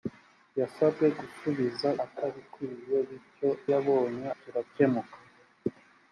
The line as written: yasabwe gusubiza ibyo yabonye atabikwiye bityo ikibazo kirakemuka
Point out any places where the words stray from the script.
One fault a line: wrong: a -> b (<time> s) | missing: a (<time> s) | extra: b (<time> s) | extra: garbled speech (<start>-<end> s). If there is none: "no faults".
missing: ibyo yabonye (1.9 s)
wrong: ikibazo -> yabonye (3.7 s)